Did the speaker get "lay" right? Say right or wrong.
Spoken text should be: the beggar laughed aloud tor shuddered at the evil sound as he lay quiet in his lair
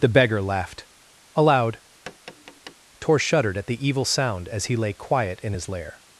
right